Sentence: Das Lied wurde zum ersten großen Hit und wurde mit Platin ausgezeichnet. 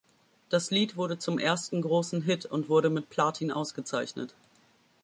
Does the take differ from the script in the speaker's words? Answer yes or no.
no